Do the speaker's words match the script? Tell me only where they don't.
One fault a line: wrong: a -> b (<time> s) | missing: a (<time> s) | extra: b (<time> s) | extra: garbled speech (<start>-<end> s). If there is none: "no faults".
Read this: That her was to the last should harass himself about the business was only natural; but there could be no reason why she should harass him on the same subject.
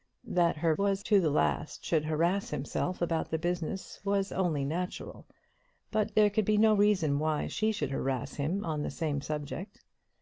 no faults